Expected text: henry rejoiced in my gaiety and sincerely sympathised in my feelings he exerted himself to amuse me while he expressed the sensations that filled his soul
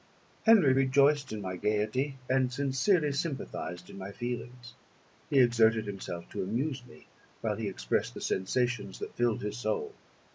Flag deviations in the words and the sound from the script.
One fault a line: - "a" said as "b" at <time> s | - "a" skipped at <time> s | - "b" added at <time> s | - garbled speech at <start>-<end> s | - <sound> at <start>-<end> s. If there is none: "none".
none